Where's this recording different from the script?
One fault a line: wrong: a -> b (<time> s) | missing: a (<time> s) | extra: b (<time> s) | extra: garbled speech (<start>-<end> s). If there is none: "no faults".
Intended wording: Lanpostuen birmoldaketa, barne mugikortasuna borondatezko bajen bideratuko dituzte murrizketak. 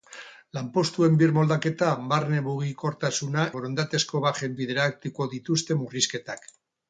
no faults